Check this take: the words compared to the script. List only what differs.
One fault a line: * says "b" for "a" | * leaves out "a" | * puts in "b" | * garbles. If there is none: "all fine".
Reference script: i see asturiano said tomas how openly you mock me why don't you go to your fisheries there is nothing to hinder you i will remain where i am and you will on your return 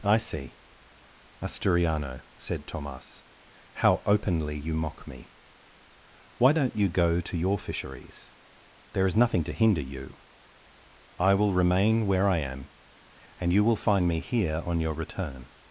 * puts in "find me here"